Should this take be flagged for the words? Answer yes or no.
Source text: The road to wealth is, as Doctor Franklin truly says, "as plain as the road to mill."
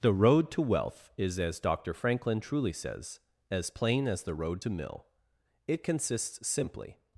yes